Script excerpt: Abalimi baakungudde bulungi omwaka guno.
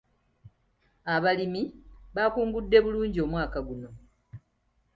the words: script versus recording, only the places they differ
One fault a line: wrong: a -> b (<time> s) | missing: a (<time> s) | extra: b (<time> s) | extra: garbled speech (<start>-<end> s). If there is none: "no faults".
no faults